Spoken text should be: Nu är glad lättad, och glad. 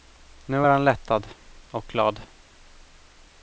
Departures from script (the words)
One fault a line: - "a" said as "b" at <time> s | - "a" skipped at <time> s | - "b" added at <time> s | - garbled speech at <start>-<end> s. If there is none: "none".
- "glad" said as "han" at 0.7 s